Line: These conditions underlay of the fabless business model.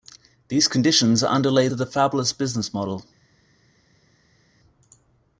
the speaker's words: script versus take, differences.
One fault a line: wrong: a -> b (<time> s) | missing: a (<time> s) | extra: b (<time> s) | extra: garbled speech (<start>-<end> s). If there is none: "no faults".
no faults